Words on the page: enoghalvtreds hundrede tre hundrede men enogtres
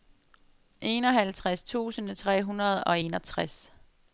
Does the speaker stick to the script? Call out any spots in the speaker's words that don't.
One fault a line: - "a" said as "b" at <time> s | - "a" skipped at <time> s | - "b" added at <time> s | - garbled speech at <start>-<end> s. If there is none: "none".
- "hundrede" said as "tusind" at 1.6 s
- "men" said as "og" at 2.8 s